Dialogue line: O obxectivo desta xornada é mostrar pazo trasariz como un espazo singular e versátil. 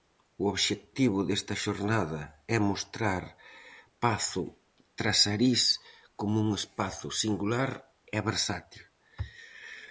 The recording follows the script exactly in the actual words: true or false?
true